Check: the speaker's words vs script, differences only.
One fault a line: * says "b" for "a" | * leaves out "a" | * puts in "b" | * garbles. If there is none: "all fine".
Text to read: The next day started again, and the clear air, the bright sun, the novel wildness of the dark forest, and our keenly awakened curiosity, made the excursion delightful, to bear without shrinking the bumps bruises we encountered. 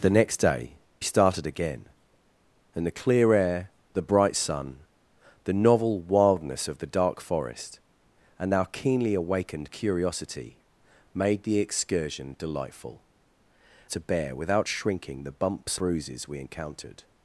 all fine